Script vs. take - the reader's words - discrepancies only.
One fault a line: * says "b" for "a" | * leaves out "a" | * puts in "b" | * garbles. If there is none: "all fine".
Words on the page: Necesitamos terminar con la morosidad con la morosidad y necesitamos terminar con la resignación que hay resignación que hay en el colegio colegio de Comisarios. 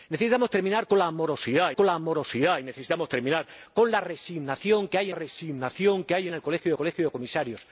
all fine